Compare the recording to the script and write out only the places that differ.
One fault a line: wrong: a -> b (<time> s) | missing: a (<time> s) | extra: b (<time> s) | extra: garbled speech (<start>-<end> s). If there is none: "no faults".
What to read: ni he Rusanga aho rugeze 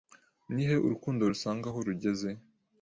extra: Urukundo (0.9 s)